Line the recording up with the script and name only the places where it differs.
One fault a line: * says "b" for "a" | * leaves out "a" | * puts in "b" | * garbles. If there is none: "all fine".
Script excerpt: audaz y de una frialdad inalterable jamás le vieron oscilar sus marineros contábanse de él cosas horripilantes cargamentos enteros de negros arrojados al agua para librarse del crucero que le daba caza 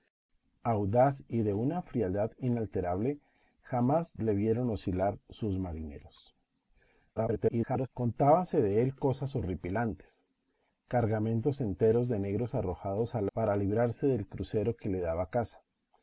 * garbles
* leaves out "agua"